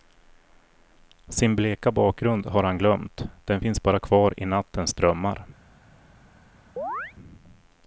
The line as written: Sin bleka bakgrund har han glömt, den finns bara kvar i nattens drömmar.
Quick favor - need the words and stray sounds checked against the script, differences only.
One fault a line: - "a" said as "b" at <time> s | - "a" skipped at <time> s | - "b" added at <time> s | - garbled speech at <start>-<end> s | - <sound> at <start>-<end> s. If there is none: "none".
- chirp at 6.8-7.1 s